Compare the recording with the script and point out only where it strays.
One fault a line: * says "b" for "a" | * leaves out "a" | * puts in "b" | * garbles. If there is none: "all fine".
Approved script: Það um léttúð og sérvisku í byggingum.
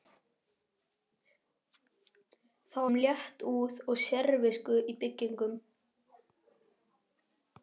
all fine